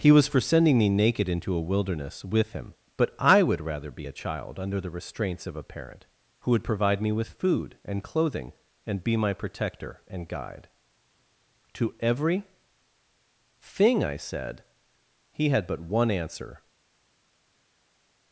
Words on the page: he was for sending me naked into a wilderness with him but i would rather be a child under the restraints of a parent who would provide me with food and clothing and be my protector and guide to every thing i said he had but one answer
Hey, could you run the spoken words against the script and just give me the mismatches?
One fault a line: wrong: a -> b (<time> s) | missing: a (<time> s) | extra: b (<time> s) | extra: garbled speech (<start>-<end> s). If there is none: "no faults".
no faults